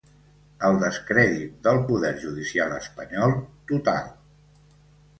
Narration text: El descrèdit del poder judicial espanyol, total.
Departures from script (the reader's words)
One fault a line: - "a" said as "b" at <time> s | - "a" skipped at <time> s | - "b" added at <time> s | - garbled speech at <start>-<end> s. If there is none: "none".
none